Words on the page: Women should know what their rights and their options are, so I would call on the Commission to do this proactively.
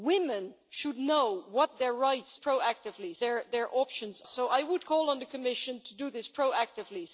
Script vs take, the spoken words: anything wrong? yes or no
yes